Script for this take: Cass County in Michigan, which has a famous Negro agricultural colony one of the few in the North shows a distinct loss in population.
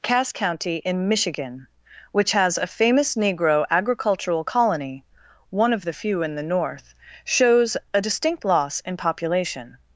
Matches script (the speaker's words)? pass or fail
pass